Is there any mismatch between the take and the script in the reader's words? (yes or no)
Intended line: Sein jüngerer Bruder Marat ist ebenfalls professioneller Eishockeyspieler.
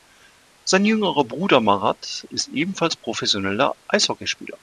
no